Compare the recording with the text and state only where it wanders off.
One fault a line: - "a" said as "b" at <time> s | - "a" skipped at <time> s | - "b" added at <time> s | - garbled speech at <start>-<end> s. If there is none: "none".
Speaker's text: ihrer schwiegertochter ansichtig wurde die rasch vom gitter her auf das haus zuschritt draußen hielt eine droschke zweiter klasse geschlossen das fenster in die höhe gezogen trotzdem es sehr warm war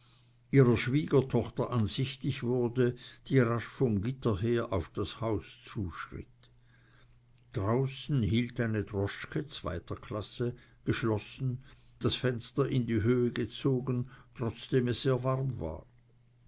none